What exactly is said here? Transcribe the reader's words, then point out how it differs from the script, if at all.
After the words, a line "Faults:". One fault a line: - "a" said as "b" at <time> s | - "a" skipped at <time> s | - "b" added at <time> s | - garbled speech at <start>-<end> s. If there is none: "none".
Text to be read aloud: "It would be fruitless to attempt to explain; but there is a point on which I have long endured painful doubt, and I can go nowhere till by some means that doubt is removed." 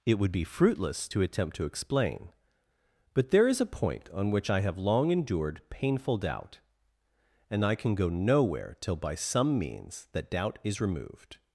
"It would be fruitless to attempt to explain; but there is a point on which I have long endured painful doubt, and I can go nowhere till by some means that doubt is removed."
Faults:
none